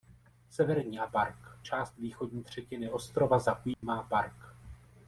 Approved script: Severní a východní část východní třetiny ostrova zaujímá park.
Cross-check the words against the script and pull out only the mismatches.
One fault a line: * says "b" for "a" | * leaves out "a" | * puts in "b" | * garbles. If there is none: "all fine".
* says "park" for "východní"